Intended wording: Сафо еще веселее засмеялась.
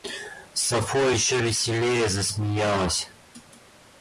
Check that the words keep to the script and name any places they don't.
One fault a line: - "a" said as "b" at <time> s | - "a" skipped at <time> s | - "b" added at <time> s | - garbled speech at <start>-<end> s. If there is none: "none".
none